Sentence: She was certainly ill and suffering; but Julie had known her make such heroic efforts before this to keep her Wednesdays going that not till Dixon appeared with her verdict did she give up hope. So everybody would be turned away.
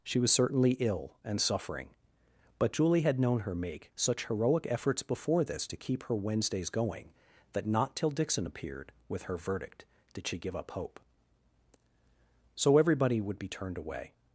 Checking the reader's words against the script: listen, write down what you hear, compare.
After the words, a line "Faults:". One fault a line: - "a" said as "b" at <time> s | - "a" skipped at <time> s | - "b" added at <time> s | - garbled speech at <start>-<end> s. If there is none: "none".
She was certainly ill and suffering; but Julie had known her make such heroic efforts before this to keep her Wednesdays going that not till Dixon appeared with her verdict did she give up hope. So everybody would be turned away.
Faults:
none